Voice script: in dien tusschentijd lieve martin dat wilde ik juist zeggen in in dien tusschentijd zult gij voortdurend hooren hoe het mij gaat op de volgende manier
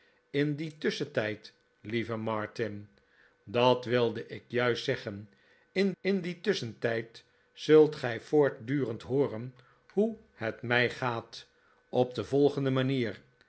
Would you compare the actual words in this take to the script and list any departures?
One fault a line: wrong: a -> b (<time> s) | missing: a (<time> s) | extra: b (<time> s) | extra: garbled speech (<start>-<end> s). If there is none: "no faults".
no faults